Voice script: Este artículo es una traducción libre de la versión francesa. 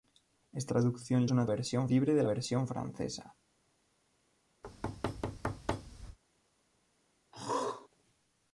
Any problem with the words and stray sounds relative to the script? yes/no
yes